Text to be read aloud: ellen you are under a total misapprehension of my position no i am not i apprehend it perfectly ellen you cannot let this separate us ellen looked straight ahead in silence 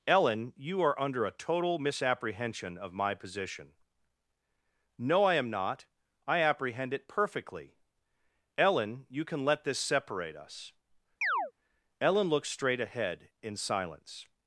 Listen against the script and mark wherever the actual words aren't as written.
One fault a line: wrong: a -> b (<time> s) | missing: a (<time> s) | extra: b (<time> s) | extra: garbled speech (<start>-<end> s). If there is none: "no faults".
wrong: cannot -> can (9.2 s)